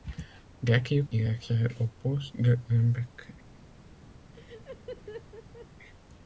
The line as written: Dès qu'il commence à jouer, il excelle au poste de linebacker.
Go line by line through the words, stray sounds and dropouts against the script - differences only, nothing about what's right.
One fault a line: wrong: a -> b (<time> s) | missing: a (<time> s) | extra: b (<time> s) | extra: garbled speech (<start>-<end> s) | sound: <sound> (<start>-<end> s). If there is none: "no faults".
missing: commence à jouer (1.1 s)
sound: laugh (4.3-5.7 s)